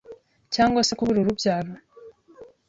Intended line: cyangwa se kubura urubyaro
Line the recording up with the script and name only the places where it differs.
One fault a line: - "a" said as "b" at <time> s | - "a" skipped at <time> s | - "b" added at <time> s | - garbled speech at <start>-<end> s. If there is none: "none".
none